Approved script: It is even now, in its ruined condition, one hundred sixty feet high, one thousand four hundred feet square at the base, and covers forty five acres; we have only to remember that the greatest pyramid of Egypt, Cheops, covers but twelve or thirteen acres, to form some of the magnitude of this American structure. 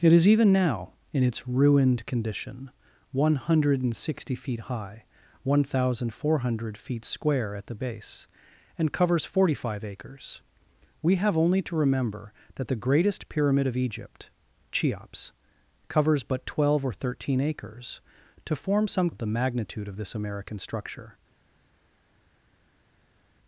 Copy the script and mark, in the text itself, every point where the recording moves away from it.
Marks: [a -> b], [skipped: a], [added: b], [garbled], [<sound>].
It is even now, in its ruined condition, one hundred sixty feet high, one thousand four hundred feet square at the base, and covers forty five acres; we have only to remember that the greatest pyramid of Egypt, Cheops, covers but twelve or thirteen acres, to form some of the magnitude of this American structure.